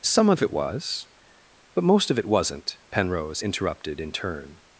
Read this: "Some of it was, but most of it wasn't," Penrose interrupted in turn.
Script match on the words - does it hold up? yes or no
yes